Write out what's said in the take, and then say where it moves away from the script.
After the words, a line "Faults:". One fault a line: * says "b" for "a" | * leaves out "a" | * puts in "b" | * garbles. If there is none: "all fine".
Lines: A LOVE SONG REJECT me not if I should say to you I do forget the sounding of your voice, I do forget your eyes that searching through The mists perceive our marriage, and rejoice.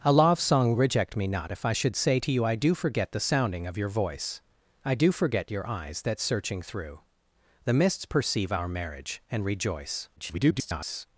A LOVE SONG REJECT me not if I should say to you I do forget the sounding of your voice, I do forget your eyes that searching through The mists perceive our marriage, and rejoice. [garbled]
Faults:
* garbles